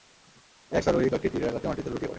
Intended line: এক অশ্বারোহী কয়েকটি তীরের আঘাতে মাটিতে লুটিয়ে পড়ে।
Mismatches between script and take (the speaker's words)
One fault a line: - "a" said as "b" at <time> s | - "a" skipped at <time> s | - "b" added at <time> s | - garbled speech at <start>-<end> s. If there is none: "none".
none